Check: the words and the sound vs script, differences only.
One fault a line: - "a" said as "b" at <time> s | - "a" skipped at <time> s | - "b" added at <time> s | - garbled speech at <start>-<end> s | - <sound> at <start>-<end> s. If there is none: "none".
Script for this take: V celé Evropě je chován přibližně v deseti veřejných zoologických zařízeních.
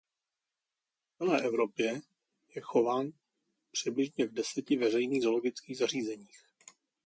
none